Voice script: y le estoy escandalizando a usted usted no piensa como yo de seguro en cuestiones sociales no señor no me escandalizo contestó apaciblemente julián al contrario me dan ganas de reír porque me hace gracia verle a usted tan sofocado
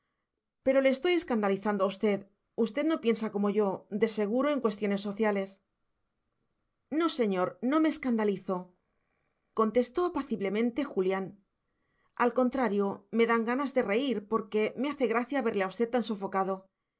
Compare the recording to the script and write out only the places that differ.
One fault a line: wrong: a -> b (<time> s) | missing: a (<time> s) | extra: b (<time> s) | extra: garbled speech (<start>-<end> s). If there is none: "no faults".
wrong: y -> pero (0.7 s)